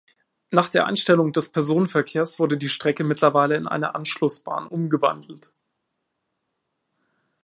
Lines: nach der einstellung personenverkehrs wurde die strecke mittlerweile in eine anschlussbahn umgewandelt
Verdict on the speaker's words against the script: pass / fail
fail